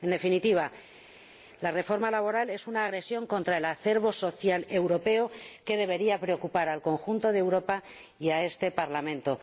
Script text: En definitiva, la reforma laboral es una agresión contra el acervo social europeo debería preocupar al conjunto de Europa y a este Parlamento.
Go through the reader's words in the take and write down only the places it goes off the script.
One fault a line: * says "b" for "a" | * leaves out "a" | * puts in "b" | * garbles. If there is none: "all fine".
* puts in "que"